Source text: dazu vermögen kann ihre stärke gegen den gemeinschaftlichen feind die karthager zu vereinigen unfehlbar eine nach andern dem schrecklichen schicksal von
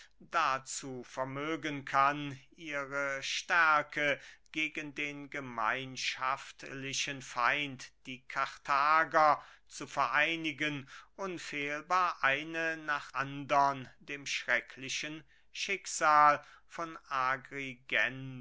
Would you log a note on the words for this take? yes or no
no